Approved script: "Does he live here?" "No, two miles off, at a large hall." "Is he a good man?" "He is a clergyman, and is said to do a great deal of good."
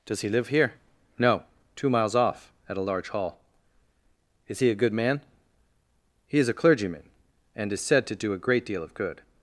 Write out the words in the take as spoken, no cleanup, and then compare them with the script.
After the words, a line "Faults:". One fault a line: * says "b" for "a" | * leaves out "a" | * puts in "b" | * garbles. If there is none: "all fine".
"Does he live here?" "No, two miles off, at a large hall." "Is he a good man?" "He is a clergyman, and is said to do a great deal of good."
Faults:
all fine